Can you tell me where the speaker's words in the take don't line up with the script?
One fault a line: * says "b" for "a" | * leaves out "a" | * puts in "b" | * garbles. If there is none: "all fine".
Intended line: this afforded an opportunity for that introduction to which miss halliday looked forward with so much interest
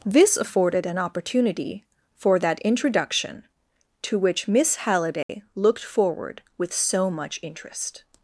all fine